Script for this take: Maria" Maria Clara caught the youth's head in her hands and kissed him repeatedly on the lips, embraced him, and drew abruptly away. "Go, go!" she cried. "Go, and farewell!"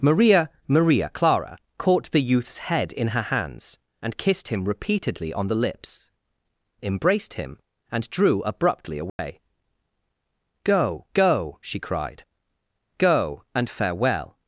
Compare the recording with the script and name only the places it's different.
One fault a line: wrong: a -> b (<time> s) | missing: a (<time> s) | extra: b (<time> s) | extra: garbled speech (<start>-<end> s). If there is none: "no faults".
no faults